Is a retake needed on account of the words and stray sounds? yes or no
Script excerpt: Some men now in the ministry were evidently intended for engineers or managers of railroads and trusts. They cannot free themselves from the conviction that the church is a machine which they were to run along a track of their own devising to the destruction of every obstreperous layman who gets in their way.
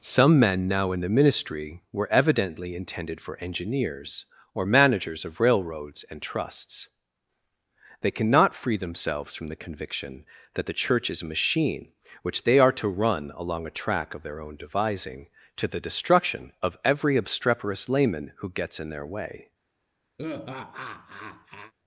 yes